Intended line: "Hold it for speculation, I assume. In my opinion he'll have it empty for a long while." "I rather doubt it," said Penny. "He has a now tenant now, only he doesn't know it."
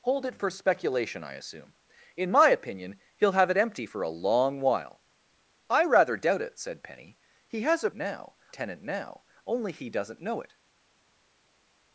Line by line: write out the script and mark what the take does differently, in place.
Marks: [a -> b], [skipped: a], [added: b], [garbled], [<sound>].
"Hold it for speculation, I assume. In my opinion he'll have it empty for a long while." "I rather doubt it," said Penny. "He has a now tenant now, only he doesn't know it."